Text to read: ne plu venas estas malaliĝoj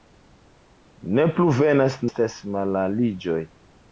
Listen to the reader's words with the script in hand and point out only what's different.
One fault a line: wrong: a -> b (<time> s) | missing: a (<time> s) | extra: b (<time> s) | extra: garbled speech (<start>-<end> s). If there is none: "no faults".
no faults